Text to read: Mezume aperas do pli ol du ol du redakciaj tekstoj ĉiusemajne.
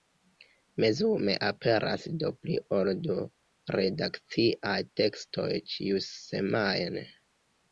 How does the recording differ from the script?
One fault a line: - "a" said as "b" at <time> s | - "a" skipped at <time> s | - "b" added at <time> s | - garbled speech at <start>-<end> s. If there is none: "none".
- "ol du" skipped at 3.2 s